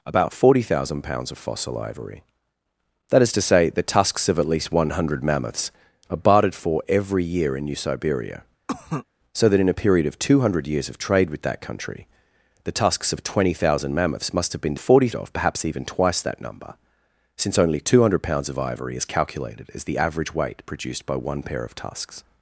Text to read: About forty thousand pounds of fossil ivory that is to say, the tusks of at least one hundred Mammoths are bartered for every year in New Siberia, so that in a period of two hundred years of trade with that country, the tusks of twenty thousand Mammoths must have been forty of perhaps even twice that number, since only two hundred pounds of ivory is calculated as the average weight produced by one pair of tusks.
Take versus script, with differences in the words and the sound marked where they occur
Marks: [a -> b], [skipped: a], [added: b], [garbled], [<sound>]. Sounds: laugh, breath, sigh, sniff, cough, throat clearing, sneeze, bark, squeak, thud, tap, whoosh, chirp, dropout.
About forty thousand pounds of fossil ivory that is to say, the tusks of at least one hundred Mammoths are bartered for every year in New Siberia, [cough] so that in a period of two hundred years of trade with that country, the tusks of twenty thousand Mammoths must have been forty of perhaps even twice that number, since only two hundred pounds of ivory is calculated as the average weight produced by one pair of tusks.